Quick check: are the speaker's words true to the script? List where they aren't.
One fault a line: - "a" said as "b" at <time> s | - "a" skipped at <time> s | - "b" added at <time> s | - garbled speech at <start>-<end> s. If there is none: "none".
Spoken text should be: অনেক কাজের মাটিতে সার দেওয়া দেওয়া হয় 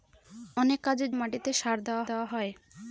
none